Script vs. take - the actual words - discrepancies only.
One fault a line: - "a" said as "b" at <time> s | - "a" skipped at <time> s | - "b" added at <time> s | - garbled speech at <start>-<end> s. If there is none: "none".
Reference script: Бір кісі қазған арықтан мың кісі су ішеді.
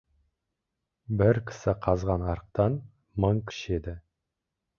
- "кісі су" skipped at 3.4 s